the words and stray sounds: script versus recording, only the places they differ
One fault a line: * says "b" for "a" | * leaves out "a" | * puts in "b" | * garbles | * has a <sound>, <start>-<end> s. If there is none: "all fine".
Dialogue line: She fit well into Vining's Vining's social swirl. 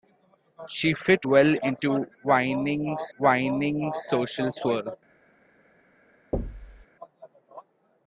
* has a thud, 6.3-6.9 s